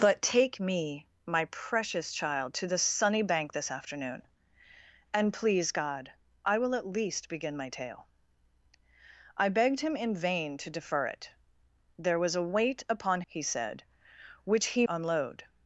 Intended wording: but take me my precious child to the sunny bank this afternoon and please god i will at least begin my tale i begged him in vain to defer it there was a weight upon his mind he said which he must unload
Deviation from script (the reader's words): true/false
true